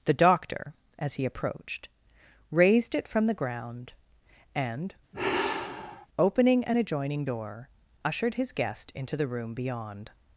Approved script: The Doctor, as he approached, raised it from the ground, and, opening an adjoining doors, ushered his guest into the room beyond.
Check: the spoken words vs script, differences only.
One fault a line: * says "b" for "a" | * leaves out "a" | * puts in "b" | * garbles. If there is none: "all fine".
* says "door" for "doors"